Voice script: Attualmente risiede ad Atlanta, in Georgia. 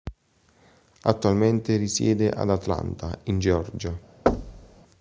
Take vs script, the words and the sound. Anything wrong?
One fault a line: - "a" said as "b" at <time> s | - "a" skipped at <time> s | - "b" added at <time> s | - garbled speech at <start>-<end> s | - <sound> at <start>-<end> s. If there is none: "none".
- thud at 4.3-4.8 s